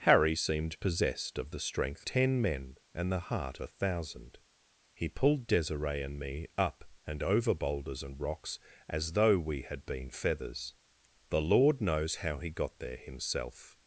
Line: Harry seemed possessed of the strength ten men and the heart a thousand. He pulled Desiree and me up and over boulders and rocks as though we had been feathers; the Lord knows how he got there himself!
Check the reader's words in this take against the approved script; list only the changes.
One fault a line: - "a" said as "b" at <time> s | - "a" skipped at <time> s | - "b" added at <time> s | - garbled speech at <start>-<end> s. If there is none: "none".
none